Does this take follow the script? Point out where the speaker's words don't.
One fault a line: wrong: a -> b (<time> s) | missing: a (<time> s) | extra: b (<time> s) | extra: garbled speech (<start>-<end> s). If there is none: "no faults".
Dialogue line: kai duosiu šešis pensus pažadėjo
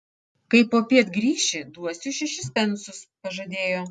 extra: popiet grįši (0.7 s)